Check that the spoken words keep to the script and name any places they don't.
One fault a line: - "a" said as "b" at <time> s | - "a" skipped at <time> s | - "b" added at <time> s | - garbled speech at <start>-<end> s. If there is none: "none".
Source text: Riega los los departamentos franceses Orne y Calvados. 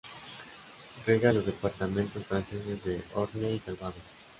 - "los" skipped at 1.4 s
- "de" added at 2.8 s